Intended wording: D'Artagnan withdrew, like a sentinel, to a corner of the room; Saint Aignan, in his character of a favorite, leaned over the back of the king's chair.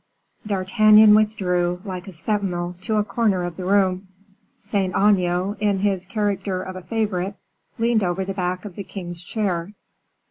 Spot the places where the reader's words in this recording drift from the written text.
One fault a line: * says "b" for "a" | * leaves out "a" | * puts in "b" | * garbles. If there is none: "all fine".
all fine